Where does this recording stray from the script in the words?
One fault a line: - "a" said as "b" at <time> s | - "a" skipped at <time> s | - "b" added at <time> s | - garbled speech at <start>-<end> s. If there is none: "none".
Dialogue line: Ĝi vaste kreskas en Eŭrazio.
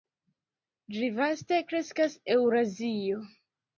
- "en" skipped at 2.2 s